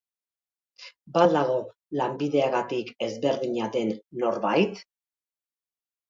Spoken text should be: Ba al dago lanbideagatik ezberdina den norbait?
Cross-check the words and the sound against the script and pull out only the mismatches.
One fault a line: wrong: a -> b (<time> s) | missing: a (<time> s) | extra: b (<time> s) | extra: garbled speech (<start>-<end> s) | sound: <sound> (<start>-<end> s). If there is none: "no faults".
no faults